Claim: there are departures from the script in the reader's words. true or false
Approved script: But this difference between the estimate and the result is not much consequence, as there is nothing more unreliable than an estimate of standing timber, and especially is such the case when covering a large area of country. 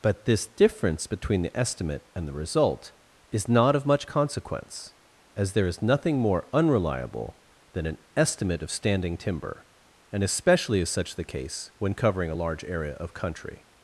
true